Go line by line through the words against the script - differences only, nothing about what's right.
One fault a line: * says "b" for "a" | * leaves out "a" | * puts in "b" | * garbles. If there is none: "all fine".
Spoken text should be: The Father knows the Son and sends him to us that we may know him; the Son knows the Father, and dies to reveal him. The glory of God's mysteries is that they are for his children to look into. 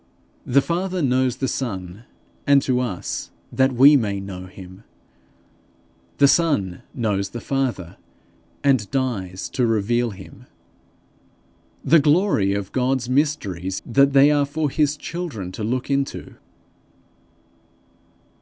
* leaves out "sends him"
* leaves out "is"